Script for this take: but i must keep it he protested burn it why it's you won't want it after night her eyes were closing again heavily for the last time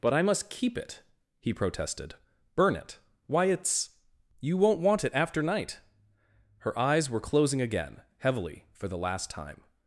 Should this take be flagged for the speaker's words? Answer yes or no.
no